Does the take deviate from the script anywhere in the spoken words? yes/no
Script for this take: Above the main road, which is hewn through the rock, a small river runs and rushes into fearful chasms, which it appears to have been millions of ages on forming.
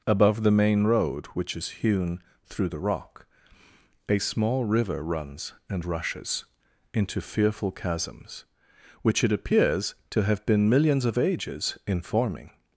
yes